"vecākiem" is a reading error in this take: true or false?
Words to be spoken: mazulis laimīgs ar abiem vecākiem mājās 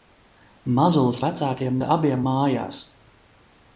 true